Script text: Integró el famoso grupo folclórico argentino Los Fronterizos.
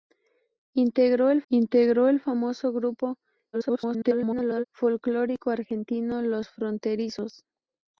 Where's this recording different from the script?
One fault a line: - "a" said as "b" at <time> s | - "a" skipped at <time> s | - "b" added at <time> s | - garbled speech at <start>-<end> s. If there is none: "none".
- "integró el" added at 1.5 s
- garbled speech at 3.5-4.6 s